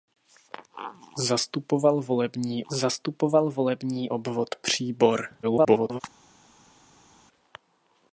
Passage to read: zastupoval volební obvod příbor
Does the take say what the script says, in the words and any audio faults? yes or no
no